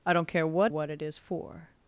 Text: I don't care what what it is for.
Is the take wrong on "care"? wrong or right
right